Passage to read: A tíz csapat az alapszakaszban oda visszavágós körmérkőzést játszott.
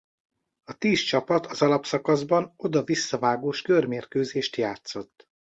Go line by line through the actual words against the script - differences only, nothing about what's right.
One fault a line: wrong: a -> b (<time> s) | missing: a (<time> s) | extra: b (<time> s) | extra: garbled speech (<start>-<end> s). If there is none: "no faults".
no faults